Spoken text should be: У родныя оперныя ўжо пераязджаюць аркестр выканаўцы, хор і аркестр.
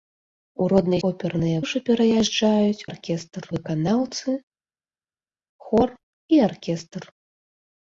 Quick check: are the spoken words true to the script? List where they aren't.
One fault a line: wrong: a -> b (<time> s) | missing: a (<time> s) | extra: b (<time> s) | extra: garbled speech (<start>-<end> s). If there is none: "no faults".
no faults